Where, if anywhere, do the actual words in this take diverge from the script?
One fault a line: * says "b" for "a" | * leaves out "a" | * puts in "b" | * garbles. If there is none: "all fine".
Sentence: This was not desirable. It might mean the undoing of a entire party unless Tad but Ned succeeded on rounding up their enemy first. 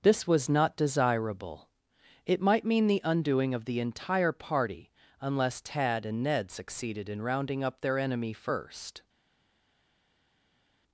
* says "the" for "a"
* says "and" for "but"
* says "in" for "on"